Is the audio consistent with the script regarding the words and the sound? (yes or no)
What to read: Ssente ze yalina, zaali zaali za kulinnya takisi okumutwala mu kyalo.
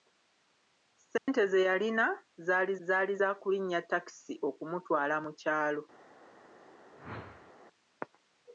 no